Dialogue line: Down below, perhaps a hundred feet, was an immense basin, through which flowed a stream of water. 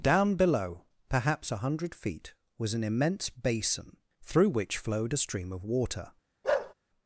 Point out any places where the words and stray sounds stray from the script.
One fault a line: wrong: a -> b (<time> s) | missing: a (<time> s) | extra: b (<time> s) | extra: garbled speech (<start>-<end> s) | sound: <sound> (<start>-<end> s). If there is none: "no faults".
sound: bark (6.4-6.7 s)